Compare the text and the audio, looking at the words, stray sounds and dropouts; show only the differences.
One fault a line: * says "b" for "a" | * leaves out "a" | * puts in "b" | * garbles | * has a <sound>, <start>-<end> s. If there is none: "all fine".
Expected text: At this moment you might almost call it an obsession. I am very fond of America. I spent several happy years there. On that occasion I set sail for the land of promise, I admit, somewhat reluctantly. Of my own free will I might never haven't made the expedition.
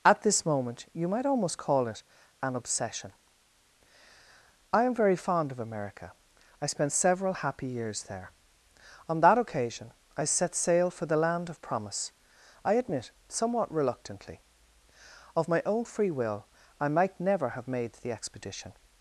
* says "have" for "haven't"